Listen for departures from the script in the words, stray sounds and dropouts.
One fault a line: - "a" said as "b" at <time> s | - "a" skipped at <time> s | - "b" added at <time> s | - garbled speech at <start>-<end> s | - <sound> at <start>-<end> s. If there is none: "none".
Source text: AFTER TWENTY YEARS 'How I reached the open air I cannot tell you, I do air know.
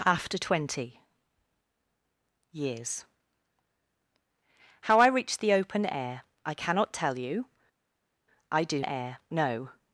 none